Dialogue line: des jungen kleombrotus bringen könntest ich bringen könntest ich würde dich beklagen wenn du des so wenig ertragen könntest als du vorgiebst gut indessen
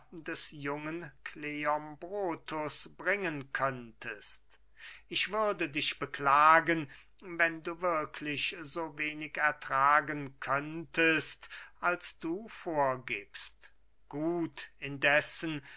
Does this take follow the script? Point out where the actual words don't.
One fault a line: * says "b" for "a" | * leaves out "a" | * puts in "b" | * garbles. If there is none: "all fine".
* leaves out "bringen könntest ich"
* says "wirklich" for "des"